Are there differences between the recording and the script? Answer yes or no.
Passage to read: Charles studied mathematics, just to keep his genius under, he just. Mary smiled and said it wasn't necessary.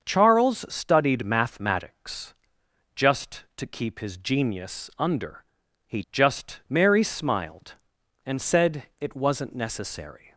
no